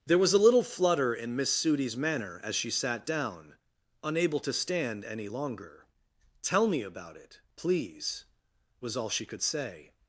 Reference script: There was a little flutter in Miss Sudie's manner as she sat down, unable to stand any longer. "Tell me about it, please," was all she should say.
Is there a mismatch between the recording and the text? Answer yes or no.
yes